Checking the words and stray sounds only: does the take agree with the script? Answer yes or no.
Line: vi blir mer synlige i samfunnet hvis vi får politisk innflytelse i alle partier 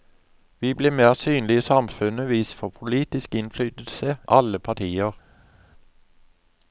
no